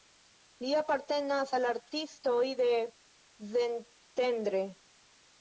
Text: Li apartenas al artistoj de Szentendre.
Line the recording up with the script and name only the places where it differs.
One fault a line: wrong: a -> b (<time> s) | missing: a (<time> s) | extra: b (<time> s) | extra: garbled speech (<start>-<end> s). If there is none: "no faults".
no faults